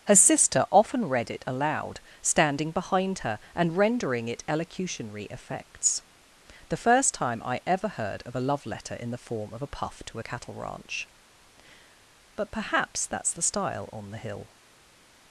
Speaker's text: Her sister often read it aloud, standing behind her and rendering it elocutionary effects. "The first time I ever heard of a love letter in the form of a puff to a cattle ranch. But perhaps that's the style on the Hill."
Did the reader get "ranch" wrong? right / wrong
right